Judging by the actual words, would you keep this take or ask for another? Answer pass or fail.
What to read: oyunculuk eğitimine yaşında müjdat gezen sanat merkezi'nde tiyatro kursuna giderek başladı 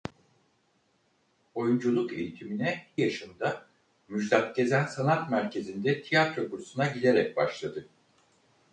pass